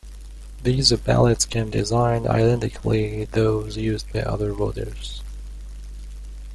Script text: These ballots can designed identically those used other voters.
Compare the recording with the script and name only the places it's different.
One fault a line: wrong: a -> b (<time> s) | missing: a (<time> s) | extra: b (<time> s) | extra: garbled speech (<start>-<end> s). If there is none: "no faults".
no faults